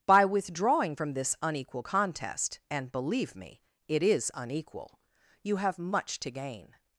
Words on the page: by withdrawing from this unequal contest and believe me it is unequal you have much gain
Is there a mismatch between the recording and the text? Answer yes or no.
yes